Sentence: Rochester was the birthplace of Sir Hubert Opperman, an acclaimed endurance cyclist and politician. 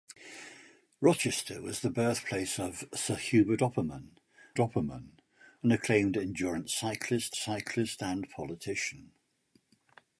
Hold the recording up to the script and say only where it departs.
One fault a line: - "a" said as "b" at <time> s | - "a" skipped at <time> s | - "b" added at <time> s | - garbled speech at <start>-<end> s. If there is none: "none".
- "Opperman" added at 4.6 s
- "cyclist" added at 7.4 s